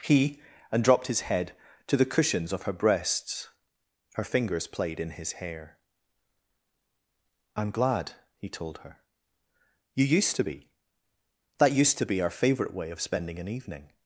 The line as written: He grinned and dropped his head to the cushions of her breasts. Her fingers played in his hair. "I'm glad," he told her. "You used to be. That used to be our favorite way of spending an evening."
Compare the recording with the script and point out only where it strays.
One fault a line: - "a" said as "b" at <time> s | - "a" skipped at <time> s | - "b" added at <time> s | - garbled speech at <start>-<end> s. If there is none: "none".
- "grinned" skipped at 0.4 s